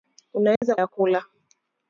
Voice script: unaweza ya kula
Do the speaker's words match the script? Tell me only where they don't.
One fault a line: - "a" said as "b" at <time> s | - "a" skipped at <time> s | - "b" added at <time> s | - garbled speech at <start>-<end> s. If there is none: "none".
none